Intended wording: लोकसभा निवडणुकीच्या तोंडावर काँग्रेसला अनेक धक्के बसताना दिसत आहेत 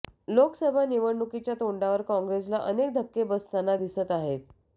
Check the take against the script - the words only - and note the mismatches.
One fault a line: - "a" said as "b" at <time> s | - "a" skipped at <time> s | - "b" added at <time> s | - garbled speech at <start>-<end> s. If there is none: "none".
none